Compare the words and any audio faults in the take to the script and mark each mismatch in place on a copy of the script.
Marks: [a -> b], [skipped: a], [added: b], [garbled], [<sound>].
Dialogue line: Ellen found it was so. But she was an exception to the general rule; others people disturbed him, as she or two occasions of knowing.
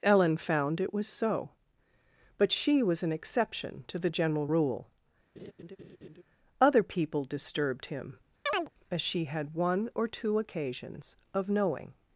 Ellen found it was so. But she was an exception to the general rule; [laugh] [others -> other] people disturbed him, [chirp] as she [added: had one] or two occasions of knowing.